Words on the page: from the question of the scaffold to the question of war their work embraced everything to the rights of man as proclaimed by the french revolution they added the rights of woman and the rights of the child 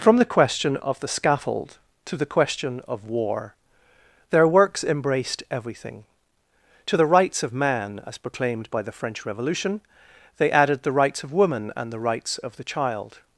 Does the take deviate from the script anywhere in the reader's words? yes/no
yes